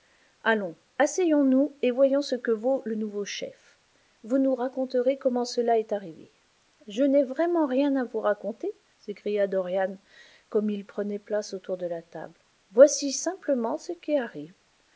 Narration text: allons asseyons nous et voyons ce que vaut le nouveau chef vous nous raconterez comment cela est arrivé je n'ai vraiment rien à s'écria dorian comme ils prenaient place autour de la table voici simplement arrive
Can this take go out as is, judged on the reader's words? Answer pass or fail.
fail